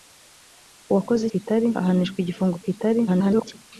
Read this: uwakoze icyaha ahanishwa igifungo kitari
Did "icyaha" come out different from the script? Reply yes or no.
yes